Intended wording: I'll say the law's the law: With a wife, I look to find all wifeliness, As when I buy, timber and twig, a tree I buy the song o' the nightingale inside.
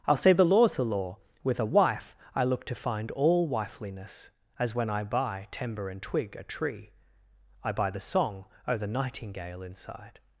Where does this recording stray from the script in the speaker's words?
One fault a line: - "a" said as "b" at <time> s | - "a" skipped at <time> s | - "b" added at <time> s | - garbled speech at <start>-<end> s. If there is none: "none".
none